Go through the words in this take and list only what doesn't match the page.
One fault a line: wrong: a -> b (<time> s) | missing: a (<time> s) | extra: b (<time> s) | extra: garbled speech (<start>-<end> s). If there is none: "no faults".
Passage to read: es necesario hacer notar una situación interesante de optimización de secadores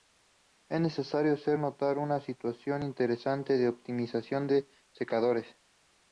no faults